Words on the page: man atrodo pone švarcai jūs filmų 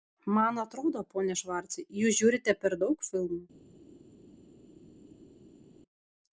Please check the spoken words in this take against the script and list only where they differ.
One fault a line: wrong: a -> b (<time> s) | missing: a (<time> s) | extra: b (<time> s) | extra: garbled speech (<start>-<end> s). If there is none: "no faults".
extra: žiūrite per daug (2.2 s)